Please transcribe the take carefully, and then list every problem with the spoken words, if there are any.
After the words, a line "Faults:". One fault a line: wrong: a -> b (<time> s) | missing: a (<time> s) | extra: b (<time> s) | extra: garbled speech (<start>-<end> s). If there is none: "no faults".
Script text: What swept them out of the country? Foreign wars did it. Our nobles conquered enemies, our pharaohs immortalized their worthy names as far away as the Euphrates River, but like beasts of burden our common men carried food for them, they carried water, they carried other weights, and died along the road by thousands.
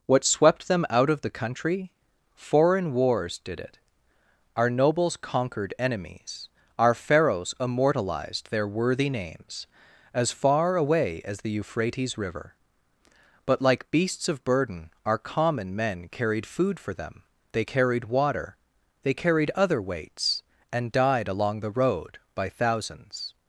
What swept them out of the country? Foreign wars did it. Our nobles conquered enemies, our pharaohs immortalized their worthy names as far away as the Euphrates River, but like beasts of burden our common men carried food for them, they carried water, they carried other weights, and died along the road by thousands.
Faults:
no faults